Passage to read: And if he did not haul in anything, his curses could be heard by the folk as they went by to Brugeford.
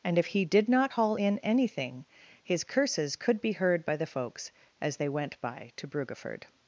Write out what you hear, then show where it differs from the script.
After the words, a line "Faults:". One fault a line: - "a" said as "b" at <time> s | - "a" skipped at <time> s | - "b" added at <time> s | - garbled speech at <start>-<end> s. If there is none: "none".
And if he did not haul in anything, his curses could be heard by the folks as they went by to Brugeford.
Faults:
- "folk" said as "folks" at 4.1 s